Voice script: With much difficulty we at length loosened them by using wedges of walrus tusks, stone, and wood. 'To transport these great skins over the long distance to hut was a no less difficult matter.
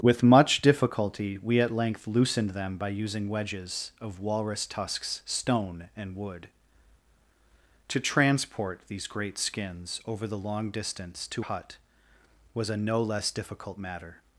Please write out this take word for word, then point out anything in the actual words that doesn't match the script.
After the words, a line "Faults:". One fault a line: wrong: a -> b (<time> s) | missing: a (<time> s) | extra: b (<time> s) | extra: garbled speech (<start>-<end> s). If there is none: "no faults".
With much difficulty we at length loosened them by using wedges of walrus tusks, stone, and wood. 'To transport these great skins over the long distance to hut was a no less difficult matter.
Faults:
no faults